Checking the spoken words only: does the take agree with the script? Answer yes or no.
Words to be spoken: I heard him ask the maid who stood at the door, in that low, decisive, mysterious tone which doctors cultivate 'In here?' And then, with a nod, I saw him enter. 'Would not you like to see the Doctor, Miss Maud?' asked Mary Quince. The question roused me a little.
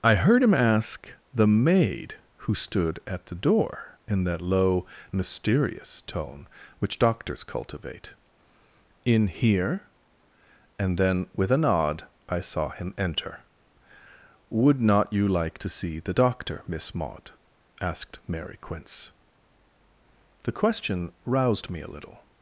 no